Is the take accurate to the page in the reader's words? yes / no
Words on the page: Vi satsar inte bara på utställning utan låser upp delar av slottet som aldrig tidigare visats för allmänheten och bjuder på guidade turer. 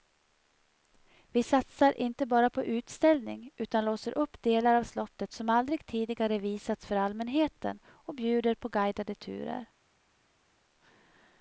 yes